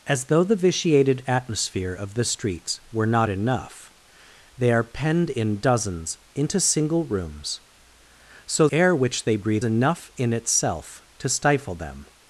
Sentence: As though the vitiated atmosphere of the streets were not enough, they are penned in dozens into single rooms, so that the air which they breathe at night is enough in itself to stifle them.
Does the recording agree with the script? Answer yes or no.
no